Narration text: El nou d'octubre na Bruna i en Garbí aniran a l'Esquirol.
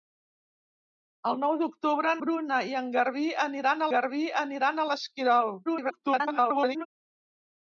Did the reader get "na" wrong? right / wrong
wrong